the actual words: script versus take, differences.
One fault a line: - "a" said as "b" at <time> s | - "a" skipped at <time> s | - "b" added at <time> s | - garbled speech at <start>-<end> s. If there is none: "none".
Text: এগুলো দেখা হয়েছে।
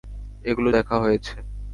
none